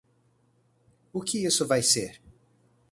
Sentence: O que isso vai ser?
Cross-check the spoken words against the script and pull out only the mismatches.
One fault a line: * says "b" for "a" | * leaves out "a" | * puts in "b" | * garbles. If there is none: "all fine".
all fine